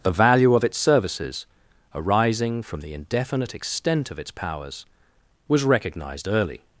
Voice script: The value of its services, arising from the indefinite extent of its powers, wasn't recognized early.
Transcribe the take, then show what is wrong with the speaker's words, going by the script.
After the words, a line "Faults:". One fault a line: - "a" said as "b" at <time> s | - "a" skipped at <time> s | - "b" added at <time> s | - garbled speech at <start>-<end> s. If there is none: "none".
The value of its services, arising from the indefinite extent of its powers, was recognized early.
Faults:
- "wasn't" said as "was" at 5.5 s